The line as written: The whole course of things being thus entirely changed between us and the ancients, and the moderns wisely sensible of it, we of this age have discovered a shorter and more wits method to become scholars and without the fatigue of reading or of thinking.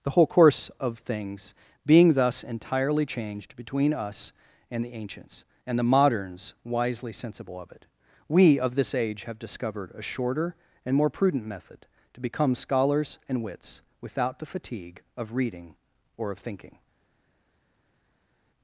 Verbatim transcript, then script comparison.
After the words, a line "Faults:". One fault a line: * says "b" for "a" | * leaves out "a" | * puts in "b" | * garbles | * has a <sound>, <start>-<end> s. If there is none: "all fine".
The whole course of things being thus entirely changed between us and the ancients, and the moderns wisely sensible of it, we of this age have discovered a shorter and more prudent method to become scholars and wits, without the fatigue of reading or of thinking.
Faults:
* says "prudent" for "wits"
* puts in "wits"